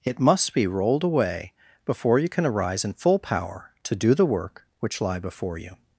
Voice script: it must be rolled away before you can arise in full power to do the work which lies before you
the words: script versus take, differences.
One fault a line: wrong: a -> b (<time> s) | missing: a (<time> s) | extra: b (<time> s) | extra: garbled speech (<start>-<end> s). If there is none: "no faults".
wrong: lies -> lie (5.0 s)